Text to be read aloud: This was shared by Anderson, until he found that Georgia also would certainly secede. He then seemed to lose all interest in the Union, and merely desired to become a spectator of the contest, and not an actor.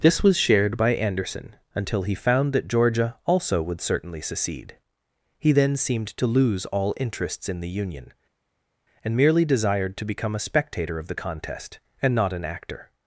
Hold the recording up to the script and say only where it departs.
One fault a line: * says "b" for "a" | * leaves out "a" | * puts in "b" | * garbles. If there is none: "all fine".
* says "interests" for "interest"